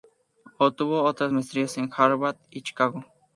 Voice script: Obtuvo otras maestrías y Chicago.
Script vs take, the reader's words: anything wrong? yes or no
yes